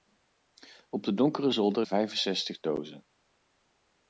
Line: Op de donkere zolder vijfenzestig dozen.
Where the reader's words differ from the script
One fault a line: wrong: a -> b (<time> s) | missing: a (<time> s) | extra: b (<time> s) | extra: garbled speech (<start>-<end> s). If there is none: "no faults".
no faults